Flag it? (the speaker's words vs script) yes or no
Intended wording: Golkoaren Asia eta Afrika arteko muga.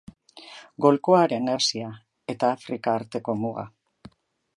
no